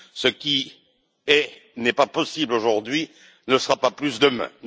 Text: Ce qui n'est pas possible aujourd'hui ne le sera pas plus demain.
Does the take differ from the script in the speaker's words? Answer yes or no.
no